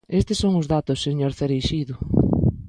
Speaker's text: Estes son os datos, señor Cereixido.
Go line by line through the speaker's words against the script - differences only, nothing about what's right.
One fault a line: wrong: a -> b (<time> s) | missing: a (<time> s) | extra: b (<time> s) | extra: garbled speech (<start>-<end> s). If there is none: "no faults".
no faults